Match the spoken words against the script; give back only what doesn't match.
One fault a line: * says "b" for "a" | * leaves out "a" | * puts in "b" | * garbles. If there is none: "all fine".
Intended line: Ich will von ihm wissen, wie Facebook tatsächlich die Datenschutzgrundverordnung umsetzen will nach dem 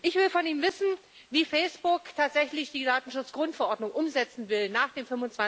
all fine